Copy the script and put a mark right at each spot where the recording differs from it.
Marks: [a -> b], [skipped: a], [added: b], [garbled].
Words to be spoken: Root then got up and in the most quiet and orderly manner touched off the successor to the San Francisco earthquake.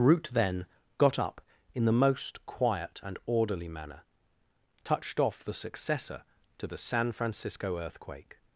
Root then got up [skipped: and] in the most quiet and orderly manner touched off the successor to the San Francisco earthquake.